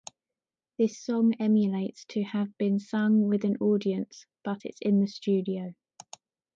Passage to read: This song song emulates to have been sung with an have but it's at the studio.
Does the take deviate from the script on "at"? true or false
true